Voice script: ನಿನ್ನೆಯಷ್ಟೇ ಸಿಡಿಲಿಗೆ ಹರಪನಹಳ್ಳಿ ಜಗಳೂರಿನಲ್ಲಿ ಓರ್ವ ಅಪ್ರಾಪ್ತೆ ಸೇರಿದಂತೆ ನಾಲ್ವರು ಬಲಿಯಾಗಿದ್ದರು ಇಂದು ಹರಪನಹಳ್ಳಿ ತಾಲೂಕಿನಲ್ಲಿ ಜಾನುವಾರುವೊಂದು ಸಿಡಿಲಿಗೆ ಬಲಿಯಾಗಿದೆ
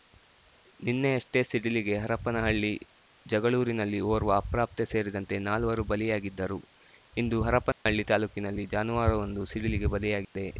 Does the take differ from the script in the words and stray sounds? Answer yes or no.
yes